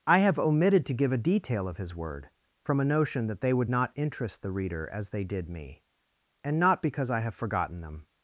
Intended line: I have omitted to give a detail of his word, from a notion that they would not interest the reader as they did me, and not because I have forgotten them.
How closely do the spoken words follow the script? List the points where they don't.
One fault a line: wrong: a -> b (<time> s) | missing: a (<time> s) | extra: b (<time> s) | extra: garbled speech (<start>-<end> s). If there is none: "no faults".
no faults